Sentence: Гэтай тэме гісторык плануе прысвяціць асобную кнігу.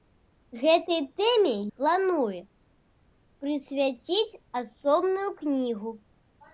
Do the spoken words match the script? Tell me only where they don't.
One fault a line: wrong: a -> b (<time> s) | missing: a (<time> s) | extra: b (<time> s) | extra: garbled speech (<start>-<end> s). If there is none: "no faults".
missing: гісторык (1.5 s)